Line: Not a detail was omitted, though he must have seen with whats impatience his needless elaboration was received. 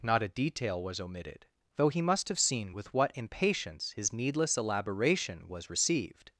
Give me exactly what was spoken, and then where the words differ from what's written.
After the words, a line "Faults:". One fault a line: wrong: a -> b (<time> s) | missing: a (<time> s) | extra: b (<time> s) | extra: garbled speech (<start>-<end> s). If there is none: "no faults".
Not a detail was omitted, though he must have seen with what impatience his needless elaboration was received.
Faults:
wrong: whats -> what (2.9 s)